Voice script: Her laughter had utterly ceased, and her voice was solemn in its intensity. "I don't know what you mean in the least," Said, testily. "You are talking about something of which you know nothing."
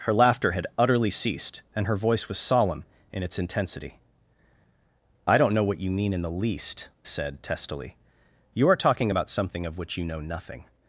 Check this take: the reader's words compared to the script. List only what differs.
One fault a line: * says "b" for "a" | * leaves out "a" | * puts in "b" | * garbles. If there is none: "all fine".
all fine